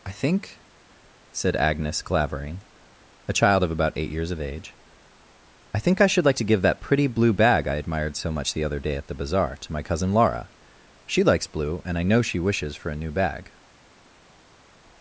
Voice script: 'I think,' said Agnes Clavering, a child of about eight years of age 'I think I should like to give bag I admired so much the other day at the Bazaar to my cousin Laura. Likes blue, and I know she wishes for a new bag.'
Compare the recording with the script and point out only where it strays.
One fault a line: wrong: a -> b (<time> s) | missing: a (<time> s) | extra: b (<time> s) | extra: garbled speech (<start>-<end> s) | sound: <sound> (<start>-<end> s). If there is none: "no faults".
extra: that pretty blue (6.6 s)
extra: She (11.1 s)